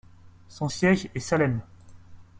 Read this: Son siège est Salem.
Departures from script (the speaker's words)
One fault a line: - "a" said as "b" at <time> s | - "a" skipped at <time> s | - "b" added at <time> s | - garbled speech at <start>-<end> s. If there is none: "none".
none